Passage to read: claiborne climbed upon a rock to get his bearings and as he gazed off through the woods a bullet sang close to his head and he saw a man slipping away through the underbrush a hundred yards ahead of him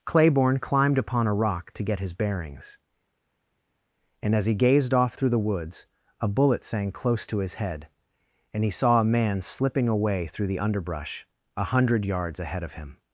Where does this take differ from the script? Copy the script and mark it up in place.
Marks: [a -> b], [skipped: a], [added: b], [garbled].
claiborne climbed upon a rock to get his bearings and as he gazed off through the woods a bullet sang close to his head and he saw a man slipping away through the underbrush a hundred yards ahead of him